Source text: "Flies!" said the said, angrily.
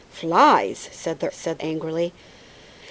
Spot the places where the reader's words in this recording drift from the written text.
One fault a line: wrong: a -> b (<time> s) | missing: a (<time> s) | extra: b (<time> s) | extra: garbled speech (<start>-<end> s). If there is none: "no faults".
no faults